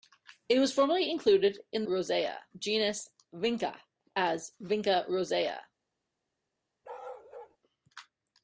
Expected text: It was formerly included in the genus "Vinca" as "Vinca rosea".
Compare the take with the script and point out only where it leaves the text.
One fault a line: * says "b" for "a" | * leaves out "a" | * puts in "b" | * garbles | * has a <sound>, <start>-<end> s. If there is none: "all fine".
* says "rosea" for "the"
* has a bark, 6.8-7.6 s